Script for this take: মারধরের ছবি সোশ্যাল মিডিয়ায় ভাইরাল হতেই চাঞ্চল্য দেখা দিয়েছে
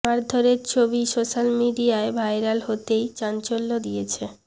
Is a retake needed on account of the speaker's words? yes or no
yes